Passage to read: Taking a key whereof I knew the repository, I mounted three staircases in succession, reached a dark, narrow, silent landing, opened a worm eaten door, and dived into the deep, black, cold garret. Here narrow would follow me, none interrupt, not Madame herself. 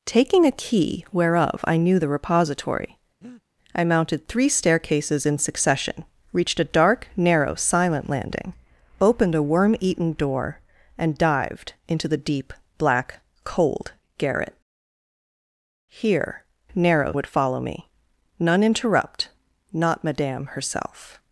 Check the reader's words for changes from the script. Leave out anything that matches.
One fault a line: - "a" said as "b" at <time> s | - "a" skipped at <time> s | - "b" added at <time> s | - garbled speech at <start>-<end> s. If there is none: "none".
none